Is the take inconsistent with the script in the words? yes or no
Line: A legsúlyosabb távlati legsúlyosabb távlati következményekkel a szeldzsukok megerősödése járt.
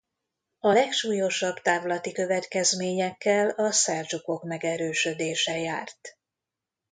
yes